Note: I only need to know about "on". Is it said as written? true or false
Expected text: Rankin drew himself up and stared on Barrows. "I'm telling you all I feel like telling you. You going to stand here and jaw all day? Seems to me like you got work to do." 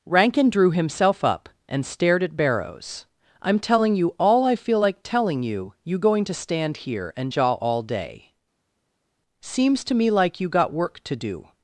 false